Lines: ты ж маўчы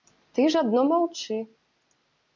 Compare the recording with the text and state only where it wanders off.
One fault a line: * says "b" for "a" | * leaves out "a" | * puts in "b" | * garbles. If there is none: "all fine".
* puts in "адно"